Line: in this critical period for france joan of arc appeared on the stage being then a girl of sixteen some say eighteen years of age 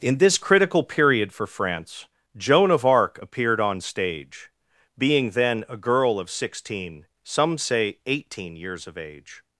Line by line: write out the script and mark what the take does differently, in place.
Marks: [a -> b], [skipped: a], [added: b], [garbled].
in this critical period for france joan of arc appeared on [skipped: the] stage being then a girl of sixteen some say eighteen years of age